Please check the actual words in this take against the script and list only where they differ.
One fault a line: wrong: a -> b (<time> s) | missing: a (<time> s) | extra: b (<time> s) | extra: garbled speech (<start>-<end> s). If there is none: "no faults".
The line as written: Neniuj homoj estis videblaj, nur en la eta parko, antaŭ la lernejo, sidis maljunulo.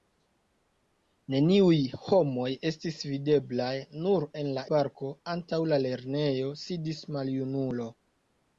missing: eta (4.6 s)